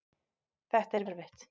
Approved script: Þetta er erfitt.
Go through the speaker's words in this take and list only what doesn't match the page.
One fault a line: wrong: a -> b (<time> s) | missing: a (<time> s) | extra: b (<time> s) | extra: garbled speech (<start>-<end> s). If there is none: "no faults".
no faults